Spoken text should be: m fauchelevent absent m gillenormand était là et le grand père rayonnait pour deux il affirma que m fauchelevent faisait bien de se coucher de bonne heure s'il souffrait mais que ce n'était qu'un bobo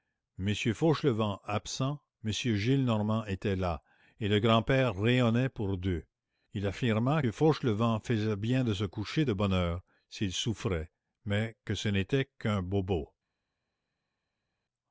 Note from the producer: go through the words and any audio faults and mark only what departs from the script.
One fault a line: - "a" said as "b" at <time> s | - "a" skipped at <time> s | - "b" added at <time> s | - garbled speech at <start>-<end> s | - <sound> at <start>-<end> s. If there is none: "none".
- "que m" skipped at 7.2 s